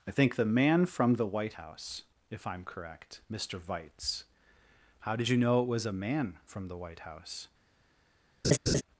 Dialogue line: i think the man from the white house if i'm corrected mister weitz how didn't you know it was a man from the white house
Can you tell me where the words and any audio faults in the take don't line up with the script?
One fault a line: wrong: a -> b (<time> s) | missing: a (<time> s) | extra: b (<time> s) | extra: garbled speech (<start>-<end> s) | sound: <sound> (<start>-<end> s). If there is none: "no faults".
wrong: corrected -> correct (2.6 s)
wrong: didn't -> did (5.2 s)
sound: laugh (8.4-8.8 s)